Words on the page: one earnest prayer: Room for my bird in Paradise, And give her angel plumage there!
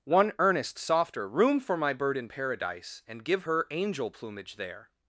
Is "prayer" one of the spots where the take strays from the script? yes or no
yes